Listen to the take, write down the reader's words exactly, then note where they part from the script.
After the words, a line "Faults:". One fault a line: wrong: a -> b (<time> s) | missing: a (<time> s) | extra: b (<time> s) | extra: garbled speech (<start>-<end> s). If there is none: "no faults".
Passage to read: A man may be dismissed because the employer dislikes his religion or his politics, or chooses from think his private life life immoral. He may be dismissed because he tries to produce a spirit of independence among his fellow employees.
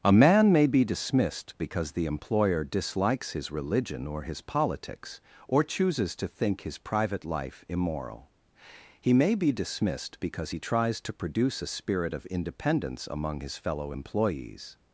A man may be dismissed because the employer dislikes his religion or his politics, or chooses to think his private life immoral. He may be dismissed because he tries to produce a spirit of independence among his fellow employees.
Faults:
wrong: from -> to (6.2 s)
missing: life (7.6 s)